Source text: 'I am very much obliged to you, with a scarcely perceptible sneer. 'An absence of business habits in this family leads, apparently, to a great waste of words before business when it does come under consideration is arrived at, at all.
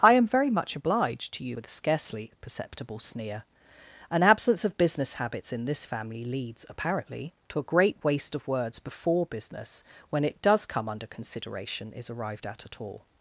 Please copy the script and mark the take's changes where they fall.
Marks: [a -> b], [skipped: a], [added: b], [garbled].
'I am very much obliged to you, with a scarcely perceptible sneer. 'An absence of business habits in this family leads, apparently, to a great waste of words before business when it does come under consideration is arrived at, at all.